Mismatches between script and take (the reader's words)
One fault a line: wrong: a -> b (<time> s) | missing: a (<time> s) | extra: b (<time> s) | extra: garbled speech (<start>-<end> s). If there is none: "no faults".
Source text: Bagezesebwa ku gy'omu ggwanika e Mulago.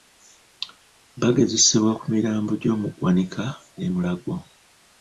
extra: mirambo (2.1 s)